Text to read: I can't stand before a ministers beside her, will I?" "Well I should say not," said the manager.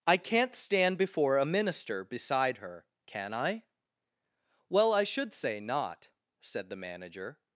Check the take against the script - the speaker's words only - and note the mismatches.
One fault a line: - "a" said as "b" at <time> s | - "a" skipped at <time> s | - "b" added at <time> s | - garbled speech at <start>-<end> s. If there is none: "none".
- "ministers" said as "minister" at 1.4 s
- "will" said as "can" at 3.0 s